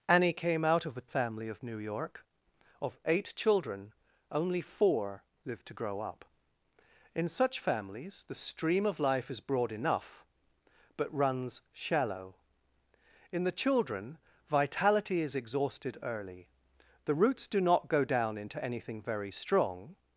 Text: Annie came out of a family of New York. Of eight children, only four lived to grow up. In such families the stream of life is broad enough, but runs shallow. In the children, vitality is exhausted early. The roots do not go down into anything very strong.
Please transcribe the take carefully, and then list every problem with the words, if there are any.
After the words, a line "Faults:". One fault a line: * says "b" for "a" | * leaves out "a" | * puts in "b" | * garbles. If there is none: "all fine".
Annie came out of a family of New York. Of eight children, only four lived to grow up. In such families the stream of life is broad enough, but runs shallow. In the children, vitality is exhausted early. The roots do not go down into anything very strong.
Faults:
all fine